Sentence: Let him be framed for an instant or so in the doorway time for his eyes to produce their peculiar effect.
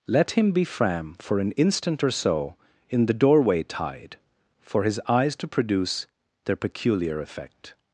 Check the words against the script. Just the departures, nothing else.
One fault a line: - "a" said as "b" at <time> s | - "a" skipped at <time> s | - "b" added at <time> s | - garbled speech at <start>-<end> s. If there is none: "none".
- "framed" said as "fram" at 0.6 s
- "time" said as "tide" at 3.6 s